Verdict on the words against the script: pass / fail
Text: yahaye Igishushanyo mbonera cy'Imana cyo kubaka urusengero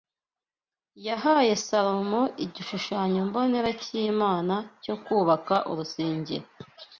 fail